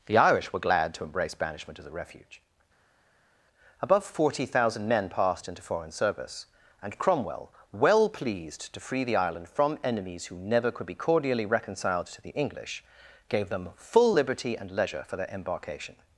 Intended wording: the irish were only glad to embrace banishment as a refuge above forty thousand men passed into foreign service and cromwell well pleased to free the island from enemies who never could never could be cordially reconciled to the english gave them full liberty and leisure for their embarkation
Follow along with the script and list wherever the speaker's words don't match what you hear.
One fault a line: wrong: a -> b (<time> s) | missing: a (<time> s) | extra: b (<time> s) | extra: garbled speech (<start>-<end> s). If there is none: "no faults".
missing: only (0.6 s)
missing: never could (10.9 s)